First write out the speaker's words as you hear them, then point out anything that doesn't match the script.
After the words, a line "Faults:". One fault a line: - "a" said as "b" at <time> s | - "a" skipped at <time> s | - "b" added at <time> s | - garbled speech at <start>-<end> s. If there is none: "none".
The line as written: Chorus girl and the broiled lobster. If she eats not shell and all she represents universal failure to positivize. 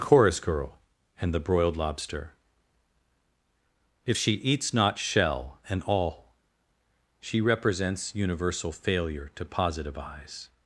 Chorus girl and the broiled lobster. If she eats not shell and all she represents universal failure to positivize.
Faults:
none